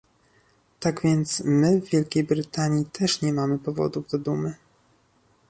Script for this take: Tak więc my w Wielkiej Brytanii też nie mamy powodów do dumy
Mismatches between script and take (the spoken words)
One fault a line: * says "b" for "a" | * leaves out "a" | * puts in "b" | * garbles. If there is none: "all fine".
all fine